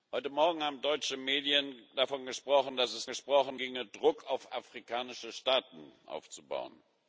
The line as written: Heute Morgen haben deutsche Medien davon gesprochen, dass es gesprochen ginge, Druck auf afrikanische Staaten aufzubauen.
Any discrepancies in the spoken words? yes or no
no